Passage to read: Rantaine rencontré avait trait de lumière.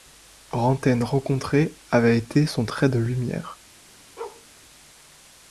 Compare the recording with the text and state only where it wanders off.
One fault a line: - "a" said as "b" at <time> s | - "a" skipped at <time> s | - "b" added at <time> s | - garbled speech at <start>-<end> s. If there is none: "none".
- "été son" added at 2.2 s